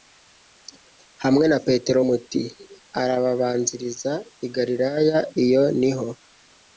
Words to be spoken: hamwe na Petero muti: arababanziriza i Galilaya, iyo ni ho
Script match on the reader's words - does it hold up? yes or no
yes